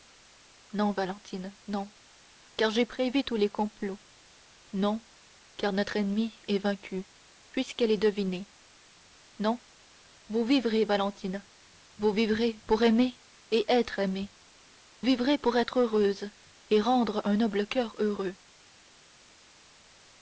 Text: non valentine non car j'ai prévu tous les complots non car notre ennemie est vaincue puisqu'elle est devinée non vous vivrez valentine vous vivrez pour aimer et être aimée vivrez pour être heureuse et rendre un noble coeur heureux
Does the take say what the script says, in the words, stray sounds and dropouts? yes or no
yes